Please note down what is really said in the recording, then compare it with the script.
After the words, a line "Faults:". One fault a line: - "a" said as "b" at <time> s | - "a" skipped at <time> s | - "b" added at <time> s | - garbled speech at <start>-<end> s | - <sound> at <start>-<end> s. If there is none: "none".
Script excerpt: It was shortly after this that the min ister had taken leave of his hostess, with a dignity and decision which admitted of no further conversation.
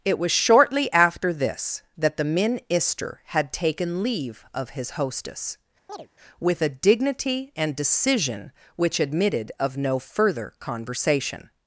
It was shortly after this that the min ister had taken leave of his hostess, with a dignity and decision which admitted of no further conversation.
Faults:
- chirp at 5.9-6.1 s